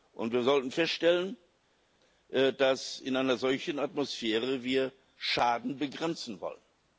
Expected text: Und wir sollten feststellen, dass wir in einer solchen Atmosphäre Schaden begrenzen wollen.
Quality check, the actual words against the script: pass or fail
pass